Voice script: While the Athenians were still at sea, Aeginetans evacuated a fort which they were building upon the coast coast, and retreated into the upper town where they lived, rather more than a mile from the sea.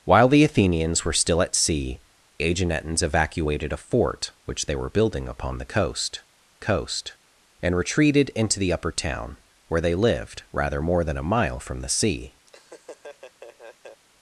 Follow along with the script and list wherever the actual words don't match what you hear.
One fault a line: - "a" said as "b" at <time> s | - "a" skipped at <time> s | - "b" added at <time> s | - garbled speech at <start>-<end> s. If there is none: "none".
none